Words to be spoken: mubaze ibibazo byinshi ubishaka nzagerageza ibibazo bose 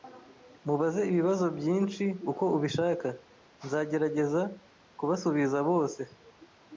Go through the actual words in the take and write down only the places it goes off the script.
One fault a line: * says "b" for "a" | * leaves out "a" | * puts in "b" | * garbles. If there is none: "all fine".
* puts in "uko"
* says "kubasubiza" for "ibibazo"